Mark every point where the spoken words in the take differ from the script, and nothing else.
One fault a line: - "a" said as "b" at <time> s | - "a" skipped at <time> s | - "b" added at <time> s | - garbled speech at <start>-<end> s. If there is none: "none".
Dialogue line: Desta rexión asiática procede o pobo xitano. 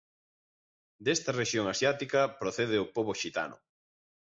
none